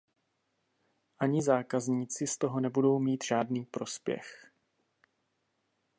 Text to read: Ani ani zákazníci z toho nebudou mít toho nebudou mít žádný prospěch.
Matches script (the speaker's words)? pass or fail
fail